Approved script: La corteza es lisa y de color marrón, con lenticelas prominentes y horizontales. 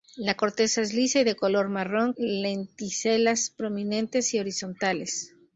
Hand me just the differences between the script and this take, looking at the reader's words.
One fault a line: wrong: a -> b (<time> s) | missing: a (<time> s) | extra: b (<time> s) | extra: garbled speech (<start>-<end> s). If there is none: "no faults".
missing: con (2.1 s)